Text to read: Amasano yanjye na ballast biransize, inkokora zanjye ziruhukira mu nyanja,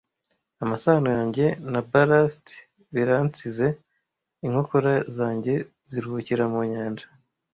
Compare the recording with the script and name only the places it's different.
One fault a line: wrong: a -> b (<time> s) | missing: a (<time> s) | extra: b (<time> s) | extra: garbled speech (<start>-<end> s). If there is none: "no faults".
no faults